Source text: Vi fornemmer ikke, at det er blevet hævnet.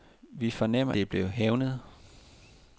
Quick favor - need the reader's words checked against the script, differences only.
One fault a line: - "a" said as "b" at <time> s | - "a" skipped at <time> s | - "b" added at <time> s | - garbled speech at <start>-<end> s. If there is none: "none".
- "ikke at" skipped at 0.9 s